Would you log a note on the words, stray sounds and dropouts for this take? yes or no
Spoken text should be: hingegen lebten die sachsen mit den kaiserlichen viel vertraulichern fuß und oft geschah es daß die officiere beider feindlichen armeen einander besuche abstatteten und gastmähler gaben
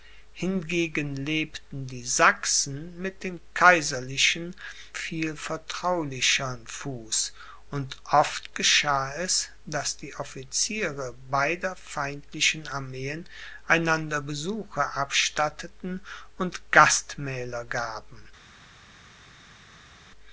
no